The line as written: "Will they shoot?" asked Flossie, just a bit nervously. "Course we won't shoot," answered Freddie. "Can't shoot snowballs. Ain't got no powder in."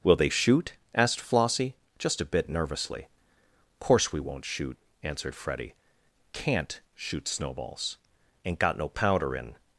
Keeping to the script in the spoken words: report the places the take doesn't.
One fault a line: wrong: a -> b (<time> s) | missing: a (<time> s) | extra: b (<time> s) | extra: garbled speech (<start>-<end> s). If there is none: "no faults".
no faults